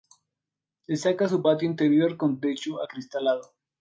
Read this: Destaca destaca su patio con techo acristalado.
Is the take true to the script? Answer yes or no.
no